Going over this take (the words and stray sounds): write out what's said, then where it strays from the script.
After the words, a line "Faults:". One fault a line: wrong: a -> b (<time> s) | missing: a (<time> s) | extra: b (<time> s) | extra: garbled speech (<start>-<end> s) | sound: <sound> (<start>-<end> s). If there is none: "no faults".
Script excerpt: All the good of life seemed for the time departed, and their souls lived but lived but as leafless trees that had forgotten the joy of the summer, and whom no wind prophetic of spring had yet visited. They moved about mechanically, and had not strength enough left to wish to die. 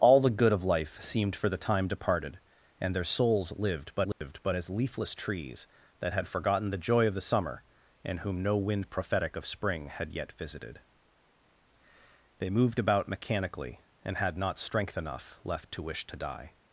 All the good of life seemed for the time departed, and their souls lived but lived but as leafless trees that had forgotten the joy of the summer, and whom no wind prophetic of spring had yet visited. They moved about mechanically, and had not strength enough left to wish to die.
Faults:
sound: dropout (4.1-4.2 s)